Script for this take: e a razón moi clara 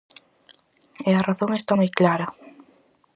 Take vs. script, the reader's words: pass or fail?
fail